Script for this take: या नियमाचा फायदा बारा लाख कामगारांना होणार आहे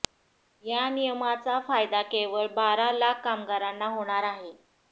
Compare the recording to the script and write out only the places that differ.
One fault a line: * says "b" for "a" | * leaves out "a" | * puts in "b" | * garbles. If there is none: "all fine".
* puts in "केवळ"